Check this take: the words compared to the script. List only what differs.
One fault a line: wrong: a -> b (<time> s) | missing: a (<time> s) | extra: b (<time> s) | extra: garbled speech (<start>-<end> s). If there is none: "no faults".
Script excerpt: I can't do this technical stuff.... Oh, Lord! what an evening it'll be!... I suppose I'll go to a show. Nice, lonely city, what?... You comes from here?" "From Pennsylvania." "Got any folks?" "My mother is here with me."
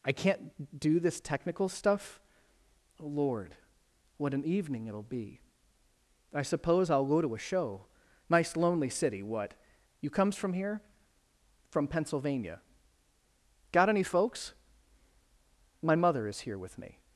no faults